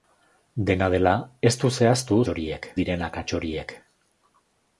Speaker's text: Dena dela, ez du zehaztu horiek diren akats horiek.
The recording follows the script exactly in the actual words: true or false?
true